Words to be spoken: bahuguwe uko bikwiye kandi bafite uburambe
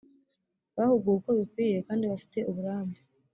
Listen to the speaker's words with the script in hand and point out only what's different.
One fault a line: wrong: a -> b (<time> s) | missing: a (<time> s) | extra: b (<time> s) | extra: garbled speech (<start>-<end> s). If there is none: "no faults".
no faults